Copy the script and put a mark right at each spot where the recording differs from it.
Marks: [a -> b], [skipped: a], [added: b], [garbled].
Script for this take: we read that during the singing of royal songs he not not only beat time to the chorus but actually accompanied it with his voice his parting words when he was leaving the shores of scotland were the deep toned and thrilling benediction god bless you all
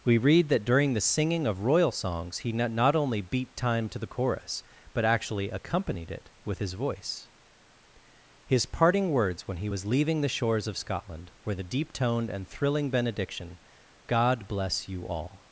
we read that during the singing of royal songs he not not only beat time to the chorus but actually accompanied it with his voice his parting words when he was leaving the shores of scotland were the deep toned and thrilling benediction god bless you all